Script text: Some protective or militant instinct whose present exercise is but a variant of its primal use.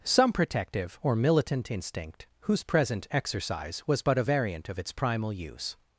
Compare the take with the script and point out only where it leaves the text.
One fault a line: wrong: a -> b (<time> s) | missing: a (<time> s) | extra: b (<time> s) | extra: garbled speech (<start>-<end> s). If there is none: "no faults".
wrong: is -> was (3.8 s)